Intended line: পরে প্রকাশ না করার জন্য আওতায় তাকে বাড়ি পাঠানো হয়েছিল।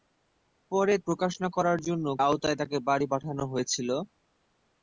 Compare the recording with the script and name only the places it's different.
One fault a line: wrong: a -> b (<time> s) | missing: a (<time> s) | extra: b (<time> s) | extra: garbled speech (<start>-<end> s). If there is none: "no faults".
no faults